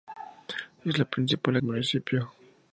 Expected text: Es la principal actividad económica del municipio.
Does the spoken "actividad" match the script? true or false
false